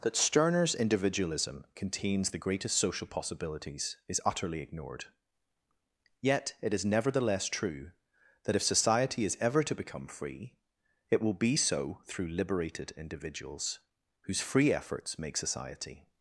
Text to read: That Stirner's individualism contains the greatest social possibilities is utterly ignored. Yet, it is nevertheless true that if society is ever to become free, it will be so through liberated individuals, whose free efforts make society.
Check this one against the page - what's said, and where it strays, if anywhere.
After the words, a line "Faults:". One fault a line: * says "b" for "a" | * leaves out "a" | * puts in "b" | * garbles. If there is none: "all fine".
That Stirner's individualism contains the greatest social possibilities is utterly ignored. Yet, it is nevertheless true that if society is ever to become free, it will be so through liberated individuals, whose free efforts make society.
Faults:
all fine